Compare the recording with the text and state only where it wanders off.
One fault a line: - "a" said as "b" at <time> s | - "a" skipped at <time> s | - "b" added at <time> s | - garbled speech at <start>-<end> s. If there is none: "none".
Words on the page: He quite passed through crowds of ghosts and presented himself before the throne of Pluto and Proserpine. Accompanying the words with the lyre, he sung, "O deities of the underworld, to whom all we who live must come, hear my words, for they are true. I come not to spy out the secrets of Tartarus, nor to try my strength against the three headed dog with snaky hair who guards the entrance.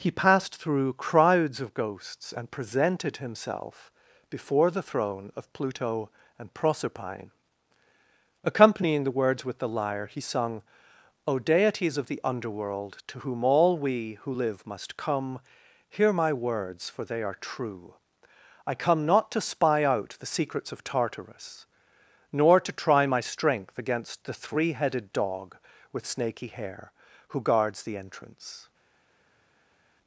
- "quite" skipped at 0.1 s